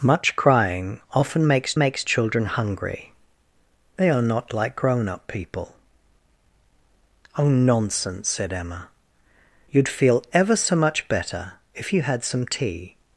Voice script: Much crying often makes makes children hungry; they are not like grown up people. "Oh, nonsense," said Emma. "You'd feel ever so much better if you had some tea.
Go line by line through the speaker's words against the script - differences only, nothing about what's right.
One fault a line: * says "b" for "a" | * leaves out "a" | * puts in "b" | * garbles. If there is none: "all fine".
all fine